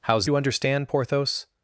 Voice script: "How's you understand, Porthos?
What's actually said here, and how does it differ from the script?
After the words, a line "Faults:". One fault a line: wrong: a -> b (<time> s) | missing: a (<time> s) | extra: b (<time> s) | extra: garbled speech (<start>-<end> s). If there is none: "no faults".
"How's you understand, Porthos?
Faults:
no faults